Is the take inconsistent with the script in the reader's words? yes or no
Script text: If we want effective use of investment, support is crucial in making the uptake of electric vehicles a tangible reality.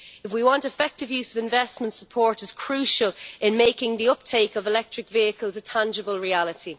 no